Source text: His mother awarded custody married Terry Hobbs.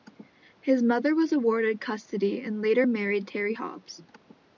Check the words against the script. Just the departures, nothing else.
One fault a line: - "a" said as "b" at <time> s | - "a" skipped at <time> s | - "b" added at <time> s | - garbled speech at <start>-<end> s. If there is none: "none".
- "was" added at 1.1 s
- "and later" added at 2.4 s